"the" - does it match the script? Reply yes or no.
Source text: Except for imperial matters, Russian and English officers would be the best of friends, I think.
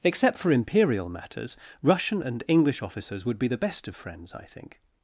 yes